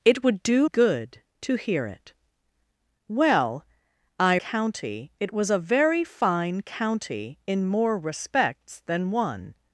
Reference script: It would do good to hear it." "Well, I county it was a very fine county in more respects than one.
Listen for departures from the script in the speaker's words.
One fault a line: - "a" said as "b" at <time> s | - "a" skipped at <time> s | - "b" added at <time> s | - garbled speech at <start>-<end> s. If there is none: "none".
none